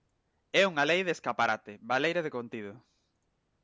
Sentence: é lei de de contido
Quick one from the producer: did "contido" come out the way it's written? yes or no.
yes